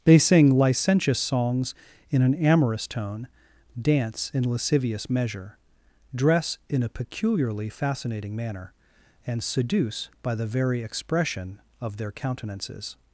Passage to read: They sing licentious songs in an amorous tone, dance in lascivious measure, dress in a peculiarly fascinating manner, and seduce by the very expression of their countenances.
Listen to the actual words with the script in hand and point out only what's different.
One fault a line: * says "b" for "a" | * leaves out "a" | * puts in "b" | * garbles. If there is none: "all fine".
all fine